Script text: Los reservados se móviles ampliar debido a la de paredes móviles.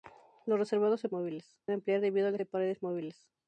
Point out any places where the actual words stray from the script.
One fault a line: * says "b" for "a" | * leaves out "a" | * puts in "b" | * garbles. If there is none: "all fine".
all fine